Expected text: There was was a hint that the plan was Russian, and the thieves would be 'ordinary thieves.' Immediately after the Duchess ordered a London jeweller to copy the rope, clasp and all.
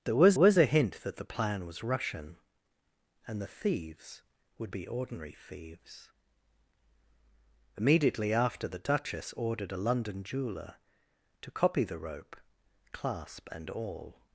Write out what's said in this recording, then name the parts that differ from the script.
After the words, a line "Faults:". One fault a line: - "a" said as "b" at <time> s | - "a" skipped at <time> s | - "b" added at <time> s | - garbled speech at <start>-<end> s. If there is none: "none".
There was was a hint that the plan was Russian, and the thieves would be 'ordinary thieves.' Immediately after the Duchess ordered a London jeweller to copy the rope, clasp and all.
Faults:
none